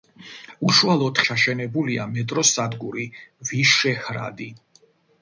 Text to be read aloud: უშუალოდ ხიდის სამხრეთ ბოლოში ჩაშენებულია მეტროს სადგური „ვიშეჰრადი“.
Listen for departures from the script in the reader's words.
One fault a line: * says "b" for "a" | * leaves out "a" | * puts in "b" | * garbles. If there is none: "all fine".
* leaves out "ხიდის სამხრეთ ბოლოში"